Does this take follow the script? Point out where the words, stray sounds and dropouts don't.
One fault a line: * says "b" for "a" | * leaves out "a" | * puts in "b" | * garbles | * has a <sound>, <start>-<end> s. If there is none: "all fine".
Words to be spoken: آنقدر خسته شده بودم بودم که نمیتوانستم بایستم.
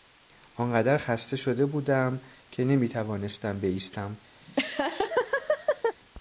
* leaves out "بودم"
* has a laugh, 4.4-6.0 s